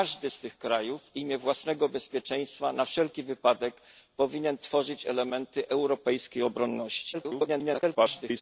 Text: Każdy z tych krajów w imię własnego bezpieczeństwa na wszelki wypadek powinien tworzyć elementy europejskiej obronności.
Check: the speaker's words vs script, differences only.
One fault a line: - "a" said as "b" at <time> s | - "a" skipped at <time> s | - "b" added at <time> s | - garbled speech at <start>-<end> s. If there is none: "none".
- garbled speech at 7.1-8.4 s